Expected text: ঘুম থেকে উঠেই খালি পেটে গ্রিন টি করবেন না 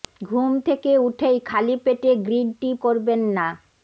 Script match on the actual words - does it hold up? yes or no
yes